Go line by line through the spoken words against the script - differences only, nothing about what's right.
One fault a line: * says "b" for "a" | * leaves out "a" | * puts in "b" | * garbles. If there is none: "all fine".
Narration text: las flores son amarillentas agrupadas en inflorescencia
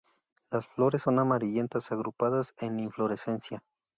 all fine